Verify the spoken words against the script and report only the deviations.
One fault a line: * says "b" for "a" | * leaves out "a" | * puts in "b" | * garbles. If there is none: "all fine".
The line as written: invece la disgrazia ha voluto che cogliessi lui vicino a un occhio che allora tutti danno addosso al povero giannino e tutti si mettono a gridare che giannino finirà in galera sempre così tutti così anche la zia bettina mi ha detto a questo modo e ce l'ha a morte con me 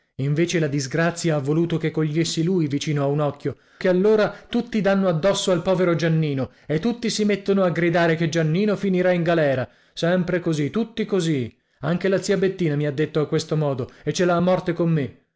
all fine